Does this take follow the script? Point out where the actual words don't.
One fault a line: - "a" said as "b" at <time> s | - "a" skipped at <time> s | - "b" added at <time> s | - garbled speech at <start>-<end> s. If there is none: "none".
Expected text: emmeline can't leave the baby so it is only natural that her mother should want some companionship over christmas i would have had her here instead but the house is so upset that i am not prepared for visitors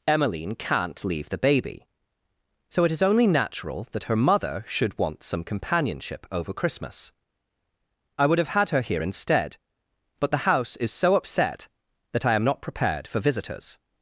none